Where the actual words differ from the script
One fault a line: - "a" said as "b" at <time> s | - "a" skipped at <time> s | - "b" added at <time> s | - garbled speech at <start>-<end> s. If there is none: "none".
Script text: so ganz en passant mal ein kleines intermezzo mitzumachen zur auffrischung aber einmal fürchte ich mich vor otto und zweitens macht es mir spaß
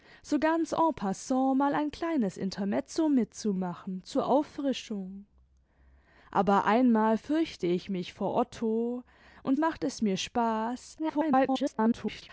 - "zweitens" skipped at 9.6 s
- garbled speech at 11.0-12.3 s